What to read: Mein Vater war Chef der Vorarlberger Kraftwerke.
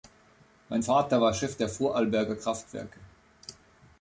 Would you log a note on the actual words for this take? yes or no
no